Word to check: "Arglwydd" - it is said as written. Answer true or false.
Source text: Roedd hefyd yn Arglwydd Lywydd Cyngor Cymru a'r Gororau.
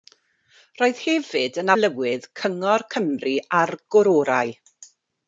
false